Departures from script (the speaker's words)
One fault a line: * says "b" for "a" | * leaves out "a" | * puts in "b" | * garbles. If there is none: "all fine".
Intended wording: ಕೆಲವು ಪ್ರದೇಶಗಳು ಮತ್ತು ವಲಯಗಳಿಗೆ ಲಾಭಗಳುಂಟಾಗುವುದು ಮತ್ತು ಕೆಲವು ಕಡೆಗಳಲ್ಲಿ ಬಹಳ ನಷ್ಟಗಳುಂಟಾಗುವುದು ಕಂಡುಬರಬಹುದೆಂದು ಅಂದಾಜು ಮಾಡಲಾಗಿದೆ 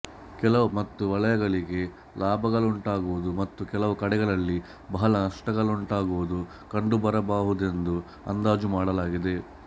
* leaves out "ಪ್ರದೇಶಗಳು"